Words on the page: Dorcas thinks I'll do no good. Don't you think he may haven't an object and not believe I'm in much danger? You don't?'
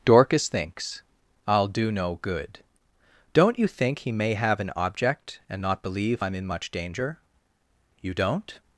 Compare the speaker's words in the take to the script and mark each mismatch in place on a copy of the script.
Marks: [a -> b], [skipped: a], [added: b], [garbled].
Dorcas thinks I'll do no good. Don't you think he may [haven't -> have] an object and not believe I'm in much danger? You don't?'